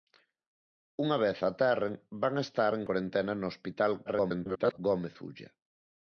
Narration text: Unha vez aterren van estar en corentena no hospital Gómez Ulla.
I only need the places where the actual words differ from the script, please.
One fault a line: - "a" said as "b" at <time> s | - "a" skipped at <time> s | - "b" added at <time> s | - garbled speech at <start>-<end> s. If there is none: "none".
- garbled speech at 4.1-4.8 s